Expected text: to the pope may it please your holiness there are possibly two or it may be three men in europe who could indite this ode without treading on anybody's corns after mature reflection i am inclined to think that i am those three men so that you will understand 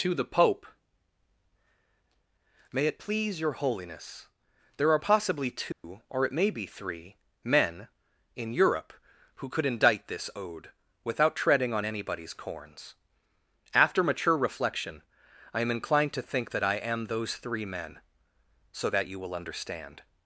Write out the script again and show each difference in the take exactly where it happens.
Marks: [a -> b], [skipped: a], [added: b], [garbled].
to the pope may it please your holiness there are possibly two or it may be three men in europe who could indite this ode without treading on anybody's corns after mature reflection i am inclined to think that i am those three men so that you will understand